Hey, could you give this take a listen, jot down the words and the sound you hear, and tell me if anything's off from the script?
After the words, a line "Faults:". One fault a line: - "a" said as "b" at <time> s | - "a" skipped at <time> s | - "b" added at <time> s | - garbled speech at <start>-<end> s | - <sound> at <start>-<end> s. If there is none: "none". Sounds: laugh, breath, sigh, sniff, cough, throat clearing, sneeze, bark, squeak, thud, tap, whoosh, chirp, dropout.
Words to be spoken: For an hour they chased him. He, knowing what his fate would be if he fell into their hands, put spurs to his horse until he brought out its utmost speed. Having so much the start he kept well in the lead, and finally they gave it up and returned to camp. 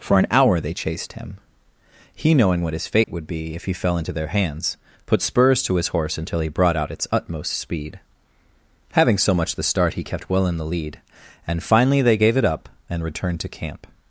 For an hour they chased him. He, knowing what his fate would be if he fell into their hands, put spurs to his horse until he brought out its utmost speed. Having so much the start he kept well in the lead, and finally they gave it up and returned to camp.
Faults:
- dropout at 3.0-3.1 s